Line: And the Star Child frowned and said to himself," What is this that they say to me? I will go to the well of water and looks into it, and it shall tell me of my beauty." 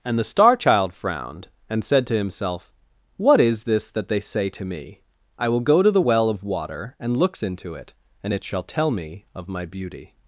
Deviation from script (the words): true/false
false